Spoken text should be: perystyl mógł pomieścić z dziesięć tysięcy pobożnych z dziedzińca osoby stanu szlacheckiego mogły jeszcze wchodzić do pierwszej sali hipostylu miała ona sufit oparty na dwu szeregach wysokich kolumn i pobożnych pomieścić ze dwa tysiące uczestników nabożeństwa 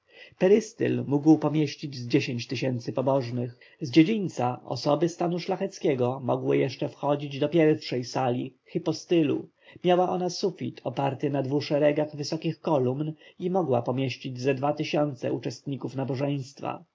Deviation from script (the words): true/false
true